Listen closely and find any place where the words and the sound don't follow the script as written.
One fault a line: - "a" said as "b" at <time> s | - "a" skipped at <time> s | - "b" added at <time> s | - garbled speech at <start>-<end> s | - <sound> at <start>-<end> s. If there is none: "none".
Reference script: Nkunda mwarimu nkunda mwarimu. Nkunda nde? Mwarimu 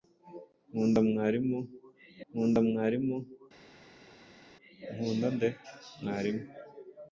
none